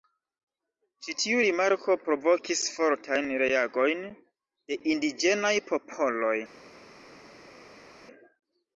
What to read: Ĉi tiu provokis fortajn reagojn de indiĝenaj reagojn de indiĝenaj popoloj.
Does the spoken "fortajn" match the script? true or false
true